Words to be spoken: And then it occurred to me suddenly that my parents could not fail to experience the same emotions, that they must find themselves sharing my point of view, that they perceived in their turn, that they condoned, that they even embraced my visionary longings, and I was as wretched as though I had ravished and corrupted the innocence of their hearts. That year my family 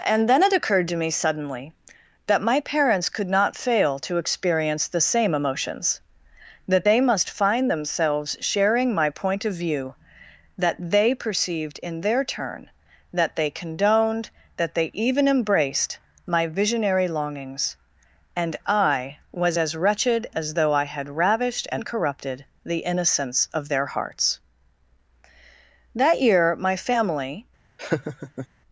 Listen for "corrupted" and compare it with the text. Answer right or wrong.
right